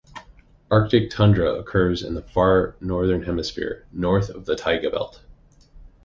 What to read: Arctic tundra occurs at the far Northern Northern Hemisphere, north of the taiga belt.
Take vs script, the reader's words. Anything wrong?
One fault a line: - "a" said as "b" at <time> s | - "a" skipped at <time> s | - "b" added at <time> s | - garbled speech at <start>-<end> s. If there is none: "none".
- "at" said as "in" at 2.0 s
- "Northern" skipped at 3.2 s